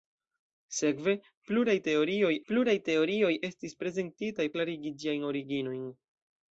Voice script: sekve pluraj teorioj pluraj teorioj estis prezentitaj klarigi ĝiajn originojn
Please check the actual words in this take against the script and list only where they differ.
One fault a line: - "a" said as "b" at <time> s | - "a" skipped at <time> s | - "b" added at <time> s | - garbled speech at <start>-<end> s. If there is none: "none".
none